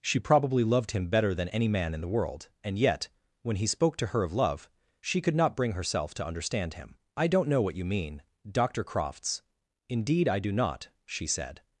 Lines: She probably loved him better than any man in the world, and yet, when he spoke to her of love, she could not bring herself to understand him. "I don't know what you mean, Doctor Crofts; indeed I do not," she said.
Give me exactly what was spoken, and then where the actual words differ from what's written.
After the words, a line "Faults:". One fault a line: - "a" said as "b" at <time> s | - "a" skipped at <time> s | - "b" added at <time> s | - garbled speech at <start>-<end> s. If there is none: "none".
She probably loved him better than any man in the world, and yet, when he spoke to her of love, she could not bring herself to understand him. "I don't know what you mean, Doctor Crofts; indeed I do not," she said.
Faults:
none